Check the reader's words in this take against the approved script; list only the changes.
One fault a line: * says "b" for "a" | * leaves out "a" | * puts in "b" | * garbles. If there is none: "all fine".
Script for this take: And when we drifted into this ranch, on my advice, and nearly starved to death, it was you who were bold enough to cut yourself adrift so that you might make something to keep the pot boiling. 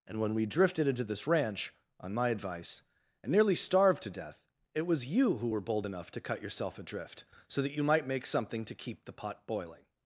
all fine